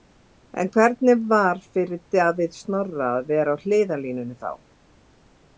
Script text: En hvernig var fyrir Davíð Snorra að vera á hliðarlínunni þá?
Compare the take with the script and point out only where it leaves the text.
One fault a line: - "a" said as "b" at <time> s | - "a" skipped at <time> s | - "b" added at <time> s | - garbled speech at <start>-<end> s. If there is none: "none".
none